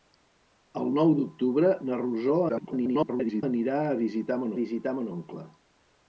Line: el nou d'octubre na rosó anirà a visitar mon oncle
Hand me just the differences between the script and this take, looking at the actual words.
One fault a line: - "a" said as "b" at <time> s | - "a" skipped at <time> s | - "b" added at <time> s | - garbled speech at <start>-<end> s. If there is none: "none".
- garbled speech at 2.5-3.4 s
- "visitar mon" added at 4.6 s